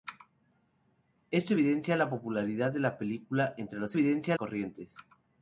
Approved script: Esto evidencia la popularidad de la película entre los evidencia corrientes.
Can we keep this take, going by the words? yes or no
yes